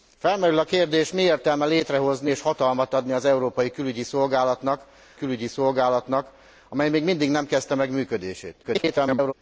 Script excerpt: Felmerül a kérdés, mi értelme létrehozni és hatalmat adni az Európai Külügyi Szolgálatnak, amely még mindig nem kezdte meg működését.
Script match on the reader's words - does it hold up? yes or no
no